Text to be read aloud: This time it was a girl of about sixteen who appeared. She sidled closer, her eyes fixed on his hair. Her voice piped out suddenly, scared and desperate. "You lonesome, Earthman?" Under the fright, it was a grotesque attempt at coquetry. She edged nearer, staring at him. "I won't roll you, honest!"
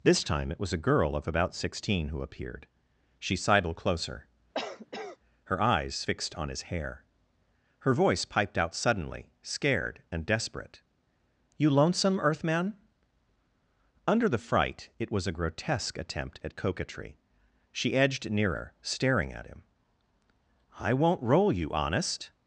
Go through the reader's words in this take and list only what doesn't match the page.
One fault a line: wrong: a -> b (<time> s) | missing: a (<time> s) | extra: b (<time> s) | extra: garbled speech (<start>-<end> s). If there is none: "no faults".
no faults